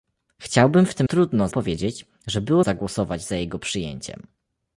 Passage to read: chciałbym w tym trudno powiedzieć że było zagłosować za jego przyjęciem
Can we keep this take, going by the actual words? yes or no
yes